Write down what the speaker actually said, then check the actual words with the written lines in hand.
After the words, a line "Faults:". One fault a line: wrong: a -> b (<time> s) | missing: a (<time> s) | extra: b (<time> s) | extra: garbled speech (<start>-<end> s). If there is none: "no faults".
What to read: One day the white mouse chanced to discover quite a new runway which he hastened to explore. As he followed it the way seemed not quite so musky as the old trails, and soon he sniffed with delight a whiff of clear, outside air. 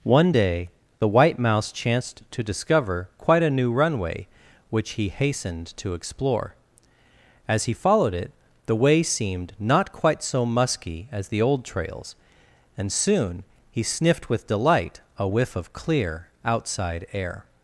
One day the white mouse chanced to discover quite a new runway which he hastened to explore. As he followed it the way seemed not quite so musky as the old trails, and soon he sniffed with delight a whiff of clear, outside air.
Faults:
no faults